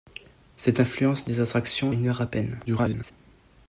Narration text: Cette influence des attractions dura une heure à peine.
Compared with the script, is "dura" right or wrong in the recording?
wrong